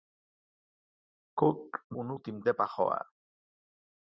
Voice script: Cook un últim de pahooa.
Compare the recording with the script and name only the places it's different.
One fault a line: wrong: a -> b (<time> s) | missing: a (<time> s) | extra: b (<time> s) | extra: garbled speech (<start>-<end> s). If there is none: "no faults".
no faults